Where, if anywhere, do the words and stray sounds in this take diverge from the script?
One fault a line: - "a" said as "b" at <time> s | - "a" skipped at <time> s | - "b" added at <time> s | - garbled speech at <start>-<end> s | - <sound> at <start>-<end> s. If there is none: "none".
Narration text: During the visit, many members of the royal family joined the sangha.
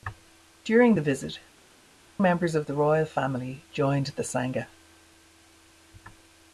- "many" skipped at 1.4 s